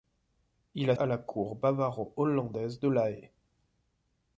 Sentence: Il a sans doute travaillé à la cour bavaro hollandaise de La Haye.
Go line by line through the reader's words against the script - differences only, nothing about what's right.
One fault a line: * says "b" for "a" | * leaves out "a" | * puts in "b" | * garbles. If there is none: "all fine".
* leaves out "sans doute travaillé"